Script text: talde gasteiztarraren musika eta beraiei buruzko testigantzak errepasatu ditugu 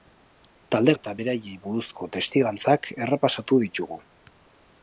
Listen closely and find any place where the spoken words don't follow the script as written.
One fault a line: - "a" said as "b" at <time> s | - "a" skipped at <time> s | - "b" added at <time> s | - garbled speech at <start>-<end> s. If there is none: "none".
- "gasteiztarraren musika" skipped at 0.9 s